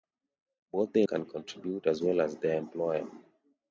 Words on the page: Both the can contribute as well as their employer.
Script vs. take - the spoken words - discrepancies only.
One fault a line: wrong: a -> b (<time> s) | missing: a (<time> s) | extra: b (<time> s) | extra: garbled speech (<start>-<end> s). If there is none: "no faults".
no faults